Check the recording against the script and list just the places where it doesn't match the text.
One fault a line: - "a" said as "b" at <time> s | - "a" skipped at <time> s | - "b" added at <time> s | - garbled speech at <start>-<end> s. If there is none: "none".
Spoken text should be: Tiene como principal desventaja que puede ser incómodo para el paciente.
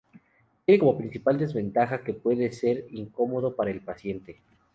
none